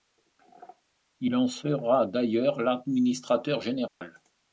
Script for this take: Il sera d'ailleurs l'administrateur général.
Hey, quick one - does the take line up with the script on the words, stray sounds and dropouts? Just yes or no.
no